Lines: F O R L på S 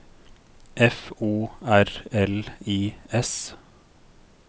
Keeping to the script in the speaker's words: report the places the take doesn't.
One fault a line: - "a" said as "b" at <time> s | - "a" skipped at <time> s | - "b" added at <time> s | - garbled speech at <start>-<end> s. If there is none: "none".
- "på" said as "I" at 2.6 s